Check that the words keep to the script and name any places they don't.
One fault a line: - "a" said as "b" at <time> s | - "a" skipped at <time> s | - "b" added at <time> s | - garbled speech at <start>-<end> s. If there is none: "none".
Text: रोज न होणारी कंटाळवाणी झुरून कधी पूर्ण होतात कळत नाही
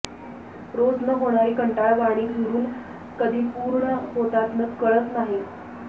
none